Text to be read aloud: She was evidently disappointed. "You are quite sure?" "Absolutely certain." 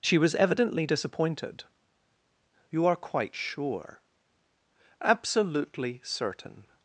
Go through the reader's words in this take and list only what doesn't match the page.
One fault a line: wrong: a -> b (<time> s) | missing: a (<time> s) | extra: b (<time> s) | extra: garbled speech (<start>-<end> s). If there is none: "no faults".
no faults